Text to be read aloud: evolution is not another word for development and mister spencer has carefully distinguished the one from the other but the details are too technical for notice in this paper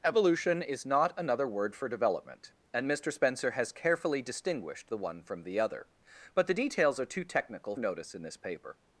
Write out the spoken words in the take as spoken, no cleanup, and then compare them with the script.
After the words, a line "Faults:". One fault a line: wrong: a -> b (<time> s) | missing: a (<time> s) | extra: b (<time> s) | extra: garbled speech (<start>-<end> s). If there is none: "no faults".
evolution is not another word for development and mister spencer has carefully distinguished the one from the other but the details are too technical notice in this paper
Faults:
missing: for (7.7 s)